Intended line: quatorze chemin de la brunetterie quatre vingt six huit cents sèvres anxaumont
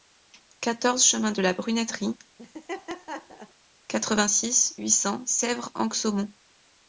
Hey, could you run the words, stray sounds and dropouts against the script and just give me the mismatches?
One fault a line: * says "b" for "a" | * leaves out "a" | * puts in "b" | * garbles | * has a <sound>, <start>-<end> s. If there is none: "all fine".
* has a laugh, 2.4-3.5 s